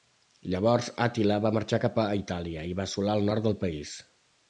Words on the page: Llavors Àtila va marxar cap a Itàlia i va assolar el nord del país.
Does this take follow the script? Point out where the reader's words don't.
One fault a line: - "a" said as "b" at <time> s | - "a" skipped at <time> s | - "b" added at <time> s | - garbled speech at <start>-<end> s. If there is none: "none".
none